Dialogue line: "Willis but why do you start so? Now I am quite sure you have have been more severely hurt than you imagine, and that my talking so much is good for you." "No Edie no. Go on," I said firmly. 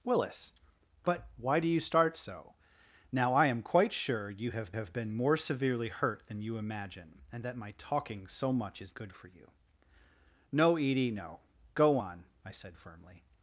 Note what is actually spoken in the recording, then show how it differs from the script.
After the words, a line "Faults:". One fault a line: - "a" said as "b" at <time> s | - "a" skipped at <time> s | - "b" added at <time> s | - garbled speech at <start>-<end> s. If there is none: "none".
"Willis but why do you start so? Now I am quite sure you have have been more severely hurt than you imagine, and that my talking so much is good for you." "No Edie no. Go on," I said firmly.
Faults:
none